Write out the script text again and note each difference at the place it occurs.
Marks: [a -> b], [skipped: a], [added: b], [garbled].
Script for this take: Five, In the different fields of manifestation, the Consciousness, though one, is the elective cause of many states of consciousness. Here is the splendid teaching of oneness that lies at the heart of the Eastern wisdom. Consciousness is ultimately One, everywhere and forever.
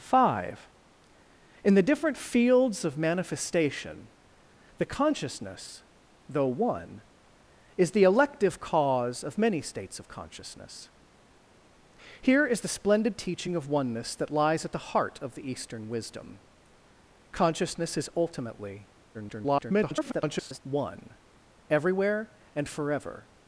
Five, In the different fields of manifestation, the Consciousness, though one, is the elective cause of many states of consciousness. Here is the splendid teaching of oneness that lies at the heart of the Eastern wisdom. Consciousness is ultimately [garbled] One, everywhere and forever.